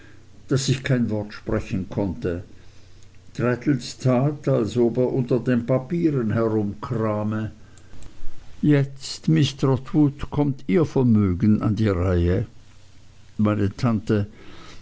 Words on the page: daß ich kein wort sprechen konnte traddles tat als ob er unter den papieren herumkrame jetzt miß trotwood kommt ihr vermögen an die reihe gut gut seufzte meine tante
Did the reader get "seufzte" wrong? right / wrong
wrong